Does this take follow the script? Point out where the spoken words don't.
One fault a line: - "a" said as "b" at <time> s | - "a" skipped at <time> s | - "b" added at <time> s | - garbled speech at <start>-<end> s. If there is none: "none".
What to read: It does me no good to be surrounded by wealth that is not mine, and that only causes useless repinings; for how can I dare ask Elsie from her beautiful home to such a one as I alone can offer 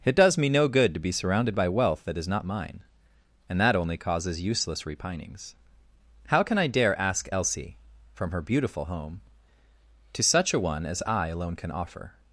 - "for" skipped at 5.5 s